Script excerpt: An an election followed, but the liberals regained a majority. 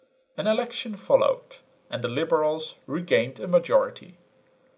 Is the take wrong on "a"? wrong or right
right